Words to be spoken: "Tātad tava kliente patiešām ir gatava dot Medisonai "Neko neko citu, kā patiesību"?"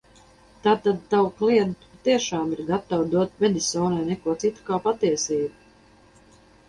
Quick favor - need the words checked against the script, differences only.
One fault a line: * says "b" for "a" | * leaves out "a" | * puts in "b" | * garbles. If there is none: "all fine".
* leaves out "neko"